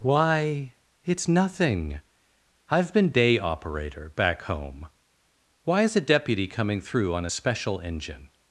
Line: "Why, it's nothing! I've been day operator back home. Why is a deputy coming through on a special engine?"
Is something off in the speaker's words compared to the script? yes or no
no